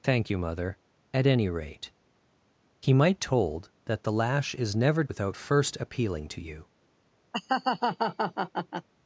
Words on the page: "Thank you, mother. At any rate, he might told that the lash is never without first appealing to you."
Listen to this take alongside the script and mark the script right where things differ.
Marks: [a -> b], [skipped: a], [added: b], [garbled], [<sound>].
"Thank you, mother. At any rate, he might told that the lash is never without first appealing to you." [laugh]